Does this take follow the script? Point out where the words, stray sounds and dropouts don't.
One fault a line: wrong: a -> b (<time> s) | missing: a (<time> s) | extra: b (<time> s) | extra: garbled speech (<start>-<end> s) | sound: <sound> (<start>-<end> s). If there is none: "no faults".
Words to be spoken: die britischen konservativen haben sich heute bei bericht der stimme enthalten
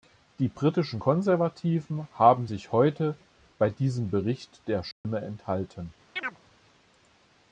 extra: diesem (3.7 s)
sound: dropout (4.9-5.0 s)
sound: chirp (6.2-6.4 s)